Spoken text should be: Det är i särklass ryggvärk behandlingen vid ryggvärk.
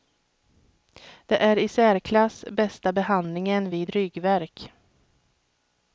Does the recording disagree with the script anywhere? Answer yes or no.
yes